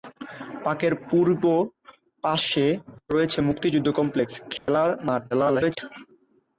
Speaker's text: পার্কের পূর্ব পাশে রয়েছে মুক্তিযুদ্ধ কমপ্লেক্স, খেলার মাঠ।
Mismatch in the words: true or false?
true